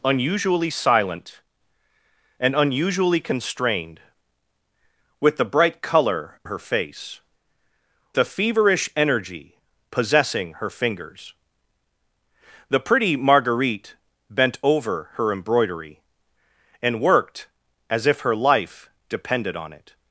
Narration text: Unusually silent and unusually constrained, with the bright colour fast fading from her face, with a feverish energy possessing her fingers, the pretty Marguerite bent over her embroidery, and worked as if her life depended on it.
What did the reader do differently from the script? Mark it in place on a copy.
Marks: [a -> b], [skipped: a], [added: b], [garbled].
Unusually silent and unusually constrained, with the bright colour [skipped: fast fading from] her face, [skipped: with] a feverish energy possessing her fingers, the pretty Marguerite bent over her embroidery, and worked as if her life depended on it.